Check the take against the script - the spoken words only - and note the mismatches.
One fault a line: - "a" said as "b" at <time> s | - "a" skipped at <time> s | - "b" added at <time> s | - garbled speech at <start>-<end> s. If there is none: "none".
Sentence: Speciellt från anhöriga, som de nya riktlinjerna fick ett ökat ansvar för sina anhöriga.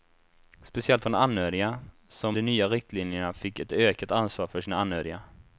none